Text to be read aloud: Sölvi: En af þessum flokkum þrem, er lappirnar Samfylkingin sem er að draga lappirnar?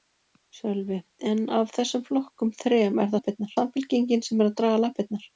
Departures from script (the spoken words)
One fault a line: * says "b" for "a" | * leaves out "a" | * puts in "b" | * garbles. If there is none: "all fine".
all fine